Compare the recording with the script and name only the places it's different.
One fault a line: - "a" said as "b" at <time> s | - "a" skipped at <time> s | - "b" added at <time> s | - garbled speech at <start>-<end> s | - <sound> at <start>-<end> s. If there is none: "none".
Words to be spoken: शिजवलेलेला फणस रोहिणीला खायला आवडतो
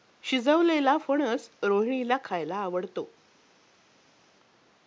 none